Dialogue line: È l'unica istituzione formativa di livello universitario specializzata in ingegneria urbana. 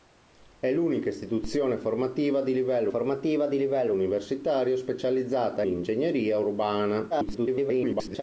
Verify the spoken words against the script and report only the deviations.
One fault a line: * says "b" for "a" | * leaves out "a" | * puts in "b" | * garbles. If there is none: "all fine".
* puts in "formativa di livello"
* leaves out "in"
* garbles